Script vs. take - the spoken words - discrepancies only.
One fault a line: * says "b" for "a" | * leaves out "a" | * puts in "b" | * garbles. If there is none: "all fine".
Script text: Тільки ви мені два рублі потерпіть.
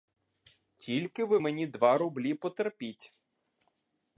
all fine